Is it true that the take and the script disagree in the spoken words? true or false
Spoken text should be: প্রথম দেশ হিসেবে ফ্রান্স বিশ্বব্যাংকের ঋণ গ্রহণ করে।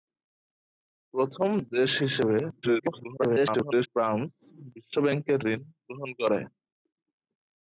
true